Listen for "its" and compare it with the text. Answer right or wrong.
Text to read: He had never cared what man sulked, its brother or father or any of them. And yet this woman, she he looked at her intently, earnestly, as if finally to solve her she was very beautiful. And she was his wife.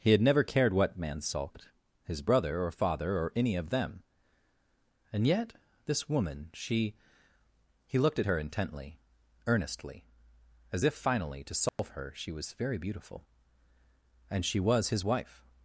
wrong